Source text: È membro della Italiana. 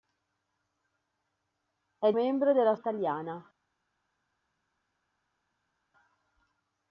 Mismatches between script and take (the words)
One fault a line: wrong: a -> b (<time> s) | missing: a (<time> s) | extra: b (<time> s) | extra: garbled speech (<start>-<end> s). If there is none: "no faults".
no faults